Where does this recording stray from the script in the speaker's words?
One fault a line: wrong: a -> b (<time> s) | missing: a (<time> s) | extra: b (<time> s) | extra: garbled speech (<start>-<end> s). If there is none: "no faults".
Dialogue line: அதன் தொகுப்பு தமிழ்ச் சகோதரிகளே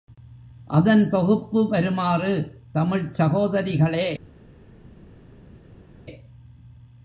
extra: வருமாறு (1.7 s)